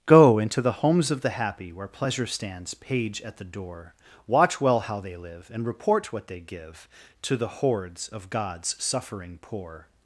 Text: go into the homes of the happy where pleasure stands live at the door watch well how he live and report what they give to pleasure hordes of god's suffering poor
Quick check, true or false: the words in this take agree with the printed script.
false